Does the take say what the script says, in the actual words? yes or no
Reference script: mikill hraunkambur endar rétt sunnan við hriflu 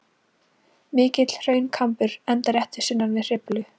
yes